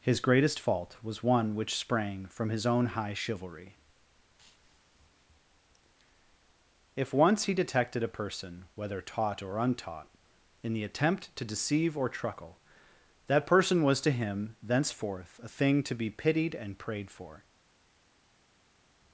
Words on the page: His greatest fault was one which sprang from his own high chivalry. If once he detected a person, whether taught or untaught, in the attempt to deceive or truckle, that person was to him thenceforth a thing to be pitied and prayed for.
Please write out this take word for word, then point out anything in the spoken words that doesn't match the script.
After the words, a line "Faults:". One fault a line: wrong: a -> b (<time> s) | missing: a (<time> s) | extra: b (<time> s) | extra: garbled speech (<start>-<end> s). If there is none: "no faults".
His greatest fault was one which sprang from his own high chivalry. If once he detected a person, whether taught or untaught, in the attempt to deceive or truckle, that person was to him thenceforth a thing to be pitied and prayed for.
Faults:
no faults